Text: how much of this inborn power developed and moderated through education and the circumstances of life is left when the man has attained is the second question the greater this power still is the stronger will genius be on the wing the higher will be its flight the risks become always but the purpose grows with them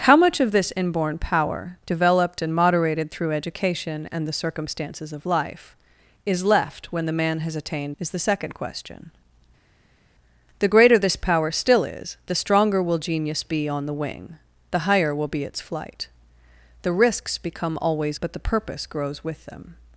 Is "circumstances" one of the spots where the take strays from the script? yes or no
no